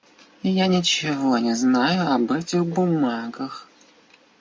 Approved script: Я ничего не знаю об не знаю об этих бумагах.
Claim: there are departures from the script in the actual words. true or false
true